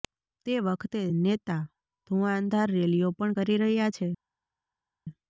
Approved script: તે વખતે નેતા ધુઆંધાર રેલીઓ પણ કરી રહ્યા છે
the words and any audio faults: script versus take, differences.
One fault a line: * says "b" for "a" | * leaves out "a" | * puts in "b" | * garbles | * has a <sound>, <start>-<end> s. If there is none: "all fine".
all fine